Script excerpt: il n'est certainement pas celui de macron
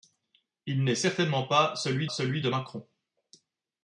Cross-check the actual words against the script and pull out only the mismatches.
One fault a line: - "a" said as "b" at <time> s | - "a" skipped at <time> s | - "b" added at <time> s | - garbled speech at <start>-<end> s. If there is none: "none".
- "celui" added at 2.1 s